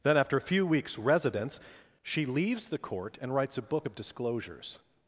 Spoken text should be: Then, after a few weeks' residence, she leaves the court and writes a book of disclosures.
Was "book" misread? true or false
false